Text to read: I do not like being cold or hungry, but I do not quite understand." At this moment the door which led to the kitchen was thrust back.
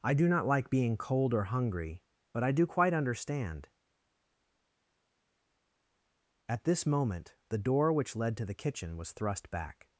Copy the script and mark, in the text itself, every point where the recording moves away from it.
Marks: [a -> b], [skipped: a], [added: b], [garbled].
I do not like being cold or hungry, but I do [skipped: not] quite understand." At this moment the door which led to the kitchen was thrust back.